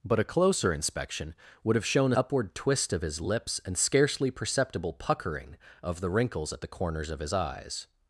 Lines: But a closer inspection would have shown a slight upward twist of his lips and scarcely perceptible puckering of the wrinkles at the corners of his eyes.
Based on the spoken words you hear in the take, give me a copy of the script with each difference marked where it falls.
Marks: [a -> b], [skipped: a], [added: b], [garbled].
But a closer inspection would have shown a [skipped: slight] upward twist of his lips and scarcely perceptible puckering of the wrinkles at the corners of his eyes.